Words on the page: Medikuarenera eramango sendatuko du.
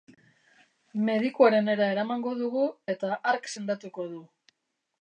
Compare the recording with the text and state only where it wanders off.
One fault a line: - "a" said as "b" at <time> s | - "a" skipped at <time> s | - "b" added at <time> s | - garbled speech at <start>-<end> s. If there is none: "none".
- "dugu eta hark" added at 2.4 s